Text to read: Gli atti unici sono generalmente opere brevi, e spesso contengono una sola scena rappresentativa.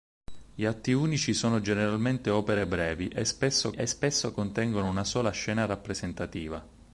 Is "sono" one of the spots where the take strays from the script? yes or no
no